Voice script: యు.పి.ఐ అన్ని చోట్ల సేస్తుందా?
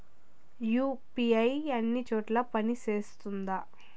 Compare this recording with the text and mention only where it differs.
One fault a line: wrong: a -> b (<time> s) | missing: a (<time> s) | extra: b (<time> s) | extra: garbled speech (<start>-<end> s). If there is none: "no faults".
extra: పని (2.5 s)